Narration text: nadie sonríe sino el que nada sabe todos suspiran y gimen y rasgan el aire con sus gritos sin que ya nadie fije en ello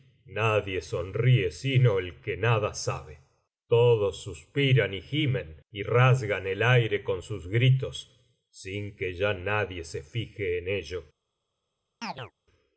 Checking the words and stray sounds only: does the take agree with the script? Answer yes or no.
no